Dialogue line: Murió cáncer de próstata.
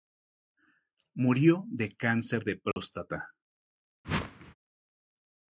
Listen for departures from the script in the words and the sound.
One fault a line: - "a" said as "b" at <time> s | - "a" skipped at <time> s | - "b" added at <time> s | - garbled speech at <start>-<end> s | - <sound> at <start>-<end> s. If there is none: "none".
- "de" added at 1.7 s
- dropout at 2.7-2.8 s
- whoosh at 4.0-4.5 s